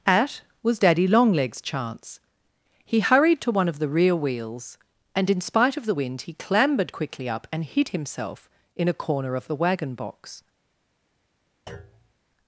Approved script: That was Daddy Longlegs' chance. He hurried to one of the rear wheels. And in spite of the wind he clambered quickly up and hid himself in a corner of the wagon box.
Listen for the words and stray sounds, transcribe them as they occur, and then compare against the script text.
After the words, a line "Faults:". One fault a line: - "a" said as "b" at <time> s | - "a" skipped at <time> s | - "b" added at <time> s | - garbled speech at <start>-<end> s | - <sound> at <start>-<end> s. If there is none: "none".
At was Daddy Longlegs' chance. He hurried to one of the rear wheels. And in spite of the wind he clambered quickly up and hid himself in a corner of the wagon box.
Faults:
- "That" said as "At" at 0.1 s
- thud at 11.7-12.1 s